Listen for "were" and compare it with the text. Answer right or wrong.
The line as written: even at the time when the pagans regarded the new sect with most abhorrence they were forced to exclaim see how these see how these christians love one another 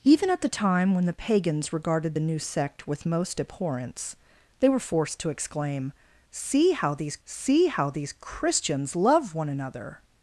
right